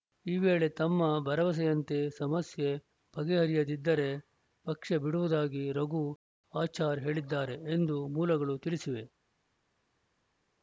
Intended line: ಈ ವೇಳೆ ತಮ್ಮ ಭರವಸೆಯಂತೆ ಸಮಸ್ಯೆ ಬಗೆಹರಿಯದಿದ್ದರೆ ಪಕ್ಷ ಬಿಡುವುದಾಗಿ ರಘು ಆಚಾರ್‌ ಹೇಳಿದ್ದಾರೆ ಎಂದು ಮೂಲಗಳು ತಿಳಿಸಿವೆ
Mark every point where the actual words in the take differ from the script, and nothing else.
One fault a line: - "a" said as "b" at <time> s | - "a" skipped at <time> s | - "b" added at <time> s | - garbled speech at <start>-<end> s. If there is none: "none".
none